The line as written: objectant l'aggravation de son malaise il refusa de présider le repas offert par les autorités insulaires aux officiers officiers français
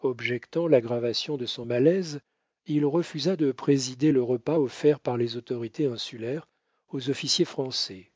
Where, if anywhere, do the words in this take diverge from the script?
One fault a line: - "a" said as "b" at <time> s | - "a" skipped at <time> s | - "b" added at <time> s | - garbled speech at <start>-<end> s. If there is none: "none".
- "officiers" skipped at 7.5 s